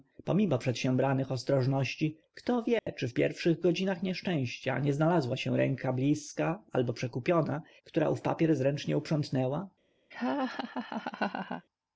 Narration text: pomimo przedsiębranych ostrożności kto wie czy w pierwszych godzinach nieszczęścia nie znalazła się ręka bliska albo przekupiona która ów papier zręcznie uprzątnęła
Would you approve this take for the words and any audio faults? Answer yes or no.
no